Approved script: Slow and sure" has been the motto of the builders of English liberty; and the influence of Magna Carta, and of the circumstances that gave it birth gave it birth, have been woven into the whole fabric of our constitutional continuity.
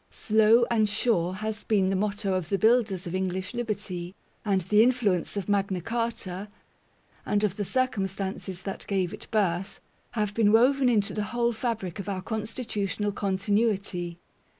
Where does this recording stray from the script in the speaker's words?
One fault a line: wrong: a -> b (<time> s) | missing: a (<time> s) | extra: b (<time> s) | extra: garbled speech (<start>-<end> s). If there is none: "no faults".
missing: gave it birth (9.8 s)